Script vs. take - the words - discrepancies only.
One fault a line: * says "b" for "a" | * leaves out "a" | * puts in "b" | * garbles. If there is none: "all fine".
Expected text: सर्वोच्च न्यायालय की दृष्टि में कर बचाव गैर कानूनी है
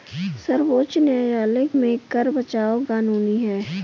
* leaves out "की दृष्टि"
* leaves out "गैर"